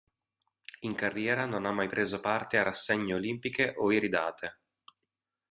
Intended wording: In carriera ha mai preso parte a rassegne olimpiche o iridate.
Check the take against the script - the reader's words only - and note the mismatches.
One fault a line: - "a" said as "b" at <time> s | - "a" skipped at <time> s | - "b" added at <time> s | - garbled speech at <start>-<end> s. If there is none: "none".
- "non" added at 1.4 s